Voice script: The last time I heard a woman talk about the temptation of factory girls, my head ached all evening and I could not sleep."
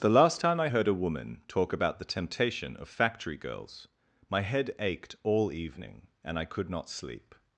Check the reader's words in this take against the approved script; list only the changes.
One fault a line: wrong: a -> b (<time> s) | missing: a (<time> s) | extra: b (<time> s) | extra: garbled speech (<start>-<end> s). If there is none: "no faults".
no faults